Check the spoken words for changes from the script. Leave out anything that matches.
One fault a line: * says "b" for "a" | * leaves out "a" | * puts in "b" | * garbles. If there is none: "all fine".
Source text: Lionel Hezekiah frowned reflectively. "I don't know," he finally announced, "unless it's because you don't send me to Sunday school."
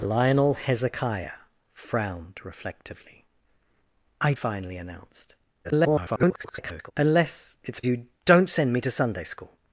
* leaves out "don't know he"
* garbles
* leaves out "because"